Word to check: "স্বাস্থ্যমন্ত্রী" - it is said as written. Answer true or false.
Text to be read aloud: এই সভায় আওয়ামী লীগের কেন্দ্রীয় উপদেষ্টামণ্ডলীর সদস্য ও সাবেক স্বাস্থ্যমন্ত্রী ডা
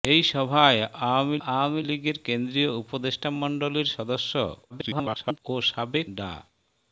false